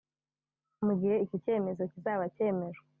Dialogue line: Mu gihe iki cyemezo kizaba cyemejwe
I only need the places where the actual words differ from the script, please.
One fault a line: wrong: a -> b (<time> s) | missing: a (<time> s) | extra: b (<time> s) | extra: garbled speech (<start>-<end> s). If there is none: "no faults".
no faults